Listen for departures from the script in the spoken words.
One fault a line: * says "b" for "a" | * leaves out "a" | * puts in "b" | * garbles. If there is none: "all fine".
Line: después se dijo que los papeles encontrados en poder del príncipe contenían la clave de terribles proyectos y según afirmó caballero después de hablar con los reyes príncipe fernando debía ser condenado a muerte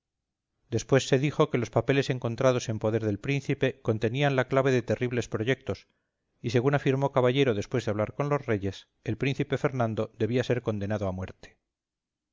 * puts in "el"